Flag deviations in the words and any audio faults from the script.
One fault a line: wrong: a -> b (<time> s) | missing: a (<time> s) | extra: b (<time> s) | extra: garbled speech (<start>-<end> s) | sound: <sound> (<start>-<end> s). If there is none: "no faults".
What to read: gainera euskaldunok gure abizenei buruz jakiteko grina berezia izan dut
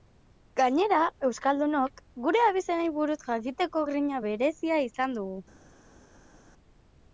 wrong: dut -> dugu (5.2 s)